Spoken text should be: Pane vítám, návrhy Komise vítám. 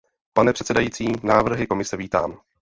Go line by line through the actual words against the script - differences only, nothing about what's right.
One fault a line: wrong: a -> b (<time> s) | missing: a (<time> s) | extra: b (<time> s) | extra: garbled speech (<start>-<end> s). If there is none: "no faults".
wrong: vítám -> předsedající (0.5 s)